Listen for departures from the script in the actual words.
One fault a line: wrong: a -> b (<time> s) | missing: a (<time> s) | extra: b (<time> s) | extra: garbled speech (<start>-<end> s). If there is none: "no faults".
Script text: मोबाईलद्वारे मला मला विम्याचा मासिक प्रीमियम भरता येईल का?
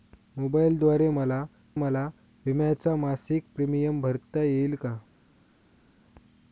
no faults